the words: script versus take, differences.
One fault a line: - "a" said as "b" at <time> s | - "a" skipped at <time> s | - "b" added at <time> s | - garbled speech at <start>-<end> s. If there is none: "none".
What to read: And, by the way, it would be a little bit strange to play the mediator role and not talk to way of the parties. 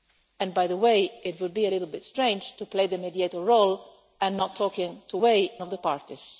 none